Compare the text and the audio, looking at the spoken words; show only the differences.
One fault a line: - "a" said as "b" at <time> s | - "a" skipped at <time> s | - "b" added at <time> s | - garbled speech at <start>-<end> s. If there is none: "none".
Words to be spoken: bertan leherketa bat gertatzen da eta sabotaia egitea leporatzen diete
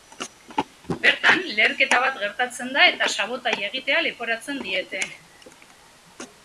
none